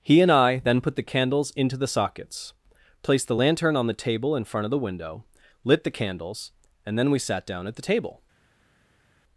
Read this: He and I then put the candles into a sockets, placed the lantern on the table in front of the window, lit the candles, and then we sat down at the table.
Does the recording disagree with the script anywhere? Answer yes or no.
yes